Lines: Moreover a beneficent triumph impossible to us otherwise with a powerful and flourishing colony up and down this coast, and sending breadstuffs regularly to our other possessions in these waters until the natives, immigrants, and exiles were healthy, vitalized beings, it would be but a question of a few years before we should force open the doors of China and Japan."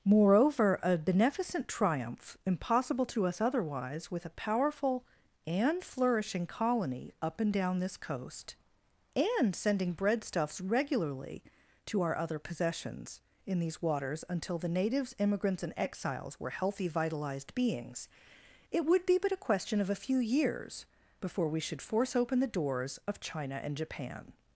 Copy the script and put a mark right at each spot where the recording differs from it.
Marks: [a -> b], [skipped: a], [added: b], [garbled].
Moreover a beneficent triumph impossible to us otherwise with a powerful and flourishing colony up and down this coast, and sending breadstuffs regularly to our other possessions in these waters until the natives, immigrants, and exiles were healthy, vitalized beings, it would be but a question of a few years before we should force open the doors of China and Japan."